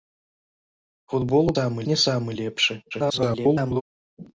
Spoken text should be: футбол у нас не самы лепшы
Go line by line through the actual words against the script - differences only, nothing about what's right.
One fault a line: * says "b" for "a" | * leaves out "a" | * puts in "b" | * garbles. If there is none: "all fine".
* says "самы" for "нас"
* garbles